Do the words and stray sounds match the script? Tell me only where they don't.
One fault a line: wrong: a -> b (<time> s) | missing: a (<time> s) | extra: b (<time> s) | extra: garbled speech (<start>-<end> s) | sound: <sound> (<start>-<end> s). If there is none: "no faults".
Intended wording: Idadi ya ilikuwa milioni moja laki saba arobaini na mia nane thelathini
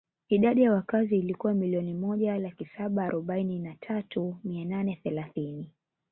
extra: wakazi (0.7 s)
extra: tatu (3.7 s)